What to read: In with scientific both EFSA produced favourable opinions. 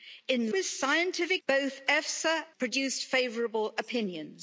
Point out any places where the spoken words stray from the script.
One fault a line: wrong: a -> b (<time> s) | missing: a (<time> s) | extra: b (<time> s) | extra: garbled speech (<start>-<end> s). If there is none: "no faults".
no faults